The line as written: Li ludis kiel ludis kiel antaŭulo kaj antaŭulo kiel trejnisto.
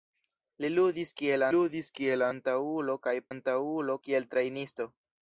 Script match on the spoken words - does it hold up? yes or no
yes